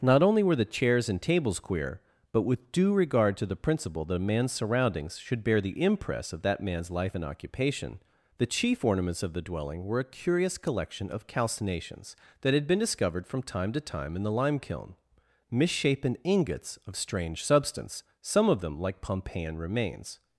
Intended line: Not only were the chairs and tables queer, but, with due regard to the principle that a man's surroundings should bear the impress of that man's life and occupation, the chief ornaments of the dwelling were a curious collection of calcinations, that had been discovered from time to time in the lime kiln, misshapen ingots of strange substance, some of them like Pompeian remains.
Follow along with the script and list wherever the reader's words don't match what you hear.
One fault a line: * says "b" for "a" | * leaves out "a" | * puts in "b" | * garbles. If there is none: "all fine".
all fine